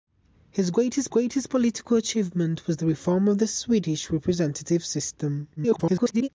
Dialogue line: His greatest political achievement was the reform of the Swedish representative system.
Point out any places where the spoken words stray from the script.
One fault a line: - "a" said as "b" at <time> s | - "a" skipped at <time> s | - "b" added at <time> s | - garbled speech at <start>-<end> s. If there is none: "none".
- "greatest" added at 1.1 s
- garbled speech at 5.6-6.3 s